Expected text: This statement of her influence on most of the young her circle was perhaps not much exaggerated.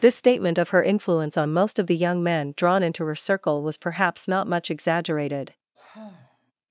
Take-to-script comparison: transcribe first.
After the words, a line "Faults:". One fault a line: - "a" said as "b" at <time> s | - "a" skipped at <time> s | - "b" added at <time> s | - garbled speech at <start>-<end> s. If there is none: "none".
This statement of her influence on most of the young men drawn into her circle was perhaps not much exaggerated.
Faults:
- "men drawn into" added at 2.2 s